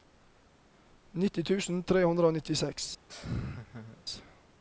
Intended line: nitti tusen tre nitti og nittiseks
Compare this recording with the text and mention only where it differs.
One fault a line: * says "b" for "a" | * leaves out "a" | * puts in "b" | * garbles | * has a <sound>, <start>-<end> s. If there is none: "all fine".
* says "hundre" for "nitti"
* has a laugh, 3.1-4.0 s